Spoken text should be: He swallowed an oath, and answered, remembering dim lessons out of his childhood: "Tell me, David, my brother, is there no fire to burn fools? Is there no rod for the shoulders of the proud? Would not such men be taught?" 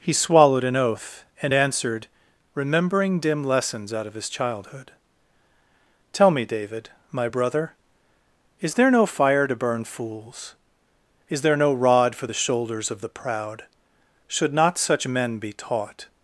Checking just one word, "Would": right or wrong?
wrong